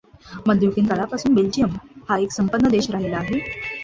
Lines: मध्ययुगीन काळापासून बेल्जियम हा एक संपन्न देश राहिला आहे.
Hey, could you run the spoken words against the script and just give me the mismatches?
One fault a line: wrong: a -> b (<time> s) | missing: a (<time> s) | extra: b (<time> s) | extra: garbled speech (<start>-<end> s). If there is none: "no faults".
no faults